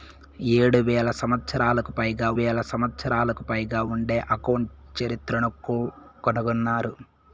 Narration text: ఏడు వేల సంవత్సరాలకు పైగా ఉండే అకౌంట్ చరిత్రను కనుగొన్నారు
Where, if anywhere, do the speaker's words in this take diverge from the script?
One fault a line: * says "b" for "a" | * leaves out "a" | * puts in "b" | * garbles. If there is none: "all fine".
* puts in "వేల సంవత్సరాలకు పైగా"